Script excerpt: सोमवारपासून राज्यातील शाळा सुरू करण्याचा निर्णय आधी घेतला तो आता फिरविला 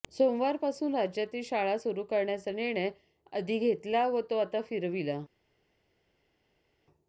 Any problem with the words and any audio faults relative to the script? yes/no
yes